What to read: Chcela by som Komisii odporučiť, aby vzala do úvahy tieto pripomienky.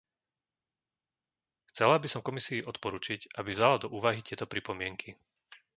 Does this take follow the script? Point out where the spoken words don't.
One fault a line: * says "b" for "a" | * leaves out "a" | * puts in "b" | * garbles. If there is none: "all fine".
all fine